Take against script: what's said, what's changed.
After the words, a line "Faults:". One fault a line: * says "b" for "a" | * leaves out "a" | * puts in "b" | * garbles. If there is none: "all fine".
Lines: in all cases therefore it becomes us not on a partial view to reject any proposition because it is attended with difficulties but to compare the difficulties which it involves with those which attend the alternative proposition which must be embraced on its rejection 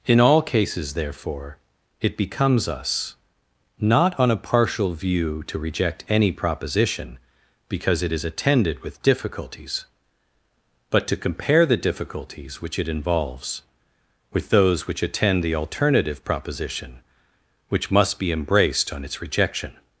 in all cases therefore it becomes us not on a partial view to reject any proposition because it is attended with difficulties but to compare the difficulties which it involves with those which attend the alternative proposition which must be embraced on its rejection
Faults:
all fine